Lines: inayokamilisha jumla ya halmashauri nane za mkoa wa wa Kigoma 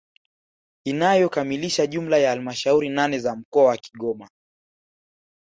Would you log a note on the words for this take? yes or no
yes